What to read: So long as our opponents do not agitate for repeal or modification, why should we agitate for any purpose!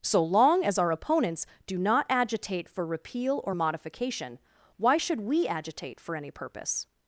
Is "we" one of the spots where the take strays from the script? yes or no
no